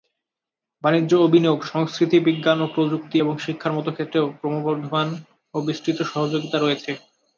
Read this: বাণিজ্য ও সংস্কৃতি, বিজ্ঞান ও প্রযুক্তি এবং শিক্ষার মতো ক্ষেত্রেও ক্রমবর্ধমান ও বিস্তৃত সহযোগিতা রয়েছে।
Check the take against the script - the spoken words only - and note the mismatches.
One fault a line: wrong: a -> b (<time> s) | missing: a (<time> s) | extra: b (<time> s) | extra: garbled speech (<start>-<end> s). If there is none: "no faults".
extra: বিনিয়োগ (1.3 s)